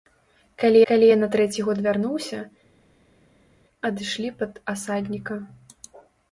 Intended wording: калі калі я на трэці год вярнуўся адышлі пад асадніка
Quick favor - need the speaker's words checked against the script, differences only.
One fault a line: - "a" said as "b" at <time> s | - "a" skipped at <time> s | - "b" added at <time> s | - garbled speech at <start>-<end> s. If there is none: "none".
none